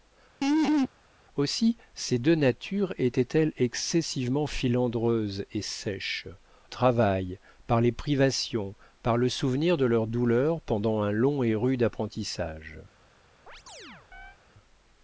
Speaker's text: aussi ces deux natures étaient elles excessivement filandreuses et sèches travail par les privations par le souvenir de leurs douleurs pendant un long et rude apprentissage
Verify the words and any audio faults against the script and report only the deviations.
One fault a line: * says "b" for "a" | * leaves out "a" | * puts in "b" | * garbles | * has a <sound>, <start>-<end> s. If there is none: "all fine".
* has a laugh, 0.4-0.9 s
* has a chirp, 13.5-14.4 s